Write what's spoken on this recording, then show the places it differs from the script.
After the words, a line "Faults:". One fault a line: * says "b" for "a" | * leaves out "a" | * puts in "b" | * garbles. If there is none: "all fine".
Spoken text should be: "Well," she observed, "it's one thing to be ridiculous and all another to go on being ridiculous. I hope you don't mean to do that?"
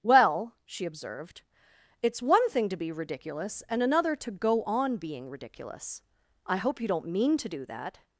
"Well," she observed, "it's one thing to be ridiculous and another to go on being ridiculous. I hope you don't mean to do that?"
Faults:
* leaves out "all"